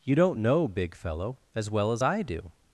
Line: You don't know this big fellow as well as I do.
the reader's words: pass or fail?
fail